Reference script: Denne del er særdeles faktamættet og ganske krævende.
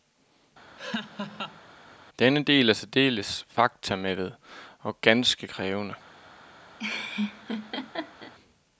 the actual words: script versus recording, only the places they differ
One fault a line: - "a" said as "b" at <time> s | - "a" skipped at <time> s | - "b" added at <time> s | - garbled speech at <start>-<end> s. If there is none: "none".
none